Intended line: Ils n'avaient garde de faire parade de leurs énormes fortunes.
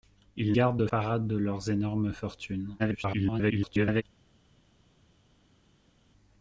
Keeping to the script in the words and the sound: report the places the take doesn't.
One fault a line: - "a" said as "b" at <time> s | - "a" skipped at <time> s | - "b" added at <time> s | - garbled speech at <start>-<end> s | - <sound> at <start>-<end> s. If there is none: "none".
- "n'avaient" skipped at 0.6 s
- "faire" skipped at 0.9 s
- garbled speech at 2.8-4.0 s